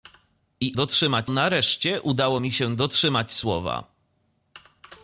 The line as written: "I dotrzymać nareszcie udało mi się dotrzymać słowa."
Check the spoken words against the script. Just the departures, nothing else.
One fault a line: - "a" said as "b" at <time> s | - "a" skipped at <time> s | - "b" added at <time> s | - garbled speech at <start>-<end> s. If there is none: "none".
none